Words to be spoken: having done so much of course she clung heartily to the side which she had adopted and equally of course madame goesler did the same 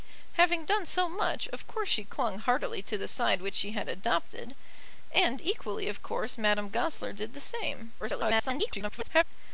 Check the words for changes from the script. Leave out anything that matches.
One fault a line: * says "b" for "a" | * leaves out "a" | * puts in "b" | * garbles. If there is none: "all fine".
* garbles